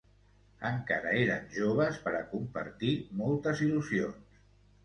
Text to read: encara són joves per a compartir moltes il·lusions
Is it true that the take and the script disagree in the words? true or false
true